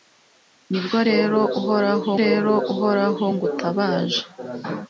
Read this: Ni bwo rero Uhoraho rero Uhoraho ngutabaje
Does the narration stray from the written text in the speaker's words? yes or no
no